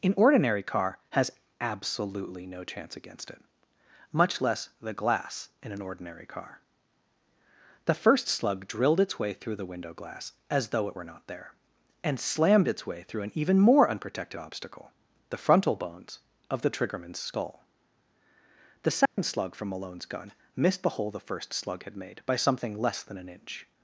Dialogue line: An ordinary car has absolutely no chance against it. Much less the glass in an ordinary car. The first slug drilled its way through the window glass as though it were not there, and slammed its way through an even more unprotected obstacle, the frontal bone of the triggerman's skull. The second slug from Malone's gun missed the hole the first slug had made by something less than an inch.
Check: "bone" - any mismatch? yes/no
yes